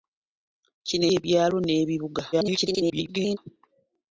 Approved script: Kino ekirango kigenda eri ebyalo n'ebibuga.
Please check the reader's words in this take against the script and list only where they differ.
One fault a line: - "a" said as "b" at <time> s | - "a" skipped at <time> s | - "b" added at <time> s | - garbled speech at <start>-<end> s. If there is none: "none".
- "ekirango kigenda eri" skipped at 1.1 s
- garbled speech at 2.3-3.4 s